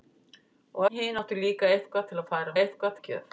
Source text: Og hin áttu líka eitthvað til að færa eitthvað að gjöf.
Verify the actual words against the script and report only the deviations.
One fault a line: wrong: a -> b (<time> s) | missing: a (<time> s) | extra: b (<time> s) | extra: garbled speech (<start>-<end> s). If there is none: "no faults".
no faults